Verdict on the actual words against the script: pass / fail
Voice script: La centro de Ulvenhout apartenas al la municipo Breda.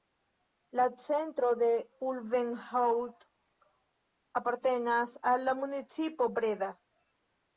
pass